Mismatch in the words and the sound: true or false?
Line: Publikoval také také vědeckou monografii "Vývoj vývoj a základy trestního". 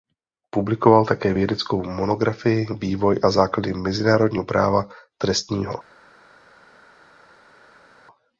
true